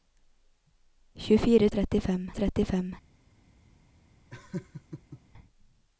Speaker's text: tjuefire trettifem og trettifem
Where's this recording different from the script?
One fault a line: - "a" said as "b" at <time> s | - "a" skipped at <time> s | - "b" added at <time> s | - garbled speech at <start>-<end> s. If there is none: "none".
none